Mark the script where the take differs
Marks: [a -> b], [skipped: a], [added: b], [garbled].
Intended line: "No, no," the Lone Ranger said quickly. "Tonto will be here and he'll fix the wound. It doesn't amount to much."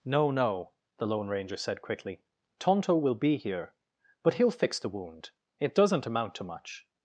"No, no," the Lone Ranger said quickly. "Tonto will be here [and -> but] he'll fix the wound. It doesn't amount to much."